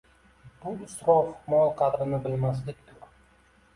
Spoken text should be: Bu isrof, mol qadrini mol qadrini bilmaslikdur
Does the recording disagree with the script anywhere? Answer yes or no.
yes